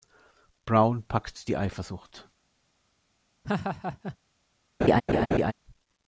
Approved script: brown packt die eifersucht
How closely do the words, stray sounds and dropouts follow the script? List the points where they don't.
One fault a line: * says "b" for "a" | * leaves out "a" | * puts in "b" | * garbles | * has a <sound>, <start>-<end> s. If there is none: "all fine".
* has a laugh, 3.4-4.2 s
* has a laugh, 4.8-5.5 s